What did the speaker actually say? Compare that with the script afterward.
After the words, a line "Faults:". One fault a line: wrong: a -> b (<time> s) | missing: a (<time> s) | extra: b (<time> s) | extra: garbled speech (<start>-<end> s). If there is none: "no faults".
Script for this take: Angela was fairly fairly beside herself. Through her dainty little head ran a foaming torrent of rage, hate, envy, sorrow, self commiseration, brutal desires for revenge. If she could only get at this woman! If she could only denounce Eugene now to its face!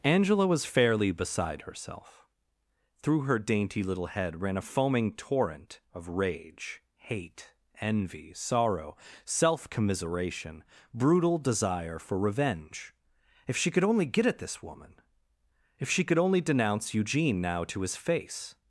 Angela was fairly beside herself. Through her dainty little head ran a foaming torrent of rage, hate, envy, sorrow, self commiseration, brutal desire for revenge. If she could only get at this woman! If she could only denounce Eugene now to his face!
Faults:
missing: fairly (1.1 s)
wrong: desires -> desire (11.4 s)
wrong: its -> his (17.8 s)